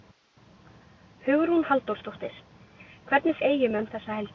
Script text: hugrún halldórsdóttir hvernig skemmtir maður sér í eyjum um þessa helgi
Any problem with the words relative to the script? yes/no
yes